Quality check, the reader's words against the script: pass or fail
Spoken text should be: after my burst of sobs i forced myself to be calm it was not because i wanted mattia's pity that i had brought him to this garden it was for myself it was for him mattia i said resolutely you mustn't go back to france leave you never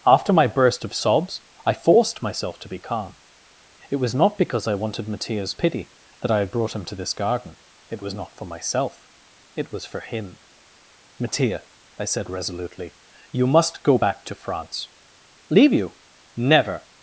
fail